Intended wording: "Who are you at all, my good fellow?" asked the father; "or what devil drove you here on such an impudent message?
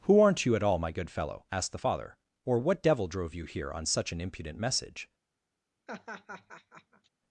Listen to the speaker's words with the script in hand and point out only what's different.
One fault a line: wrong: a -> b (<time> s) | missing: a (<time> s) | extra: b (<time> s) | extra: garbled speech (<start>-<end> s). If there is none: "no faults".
wrong: are -> aren't (0.2 s)